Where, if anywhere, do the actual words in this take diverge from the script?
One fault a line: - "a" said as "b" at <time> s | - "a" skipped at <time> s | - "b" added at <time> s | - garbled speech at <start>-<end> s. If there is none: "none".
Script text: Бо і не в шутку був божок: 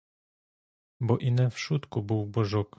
none